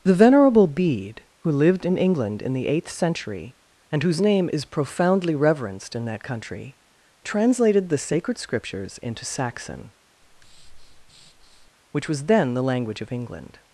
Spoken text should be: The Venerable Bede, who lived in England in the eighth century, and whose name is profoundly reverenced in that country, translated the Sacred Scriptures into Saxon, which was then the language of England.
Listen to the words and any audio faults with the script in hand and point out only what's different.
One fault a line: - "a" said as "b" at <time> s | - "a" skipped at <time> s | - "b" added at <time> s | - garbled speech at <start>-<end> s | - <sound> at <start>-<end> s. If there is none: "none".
- breath at 10.2-11.7 s